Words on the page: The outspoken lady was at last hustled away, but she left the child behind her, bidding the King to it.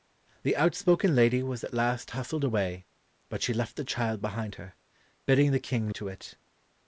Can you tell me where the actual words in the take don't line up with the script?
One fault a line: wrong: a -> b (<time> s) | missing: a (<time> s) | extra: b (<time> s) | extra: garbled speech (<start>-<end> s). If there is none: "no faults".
no faults